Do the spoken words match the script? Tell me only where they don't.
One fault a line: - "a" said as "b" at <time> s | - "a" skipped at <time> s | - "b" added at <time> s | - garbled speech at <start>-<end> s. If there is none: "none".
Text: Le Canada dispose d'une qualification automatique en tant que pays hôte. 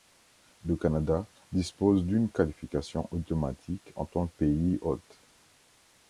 - "que" skipped at 4.2 s